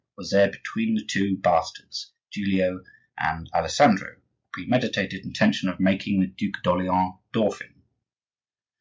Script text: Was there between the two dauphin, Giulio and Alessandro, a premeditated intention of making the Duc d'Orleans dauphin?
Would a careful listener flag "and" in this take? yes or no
no